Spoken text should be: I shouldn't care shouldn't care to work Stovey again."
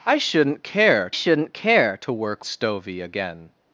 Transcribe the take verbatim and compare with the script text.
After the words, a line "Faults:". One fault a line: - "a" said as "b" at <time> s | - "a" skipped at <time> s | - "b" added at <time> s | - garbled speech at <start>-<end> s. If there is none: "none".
I shouldn't care shouldn't care to work Stovey again."
Faults:
none